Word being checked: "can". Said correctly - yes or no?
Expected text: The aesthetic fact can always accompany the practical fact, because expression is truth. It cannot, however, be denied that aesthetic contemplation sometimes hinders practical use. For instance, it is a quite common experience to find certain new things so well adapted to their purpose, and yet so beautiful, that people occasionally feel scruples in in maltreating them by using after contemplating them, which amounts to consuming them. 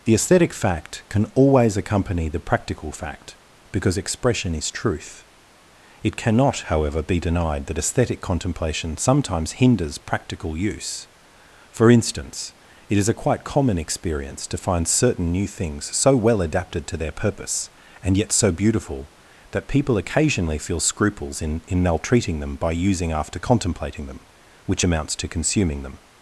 yes